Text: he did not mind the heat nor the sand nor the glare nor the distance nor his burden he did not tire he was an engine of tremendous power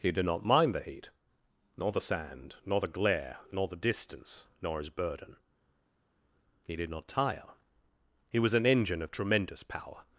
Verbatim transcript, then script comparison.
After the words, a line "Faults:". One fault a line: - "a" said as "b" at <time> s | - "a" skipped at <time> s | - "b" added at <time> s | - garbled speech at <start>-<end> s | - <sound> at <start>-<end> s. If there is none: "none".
he did not mind the heat nor the sand nor the glare nor the distance nor his burden he did not tire he was an engine of tremendous power
Faults:
none